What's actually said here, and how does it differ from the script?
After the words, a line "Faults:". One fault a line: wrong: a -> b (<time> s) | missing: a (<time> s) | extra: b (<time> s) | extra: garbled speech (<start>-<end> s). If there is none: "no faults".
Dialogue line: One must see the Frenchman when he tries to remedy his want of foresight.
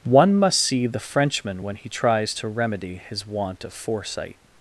One must see the Frenchman when he tries to remedy his want of foresight.
Faults:
no faults